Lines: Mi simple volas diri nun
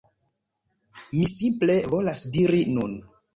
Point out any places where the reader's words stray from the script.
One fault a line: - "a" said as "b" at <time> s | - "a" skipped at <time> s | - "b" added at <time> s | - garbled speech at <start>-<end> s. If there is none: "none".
none